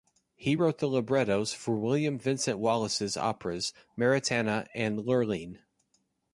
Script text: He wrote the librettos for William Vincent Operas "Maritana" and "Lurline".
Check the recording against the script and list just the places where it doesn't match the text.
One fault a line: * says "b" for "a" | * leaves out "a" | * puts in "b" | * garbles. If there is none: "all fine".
* puts in "Wallace's"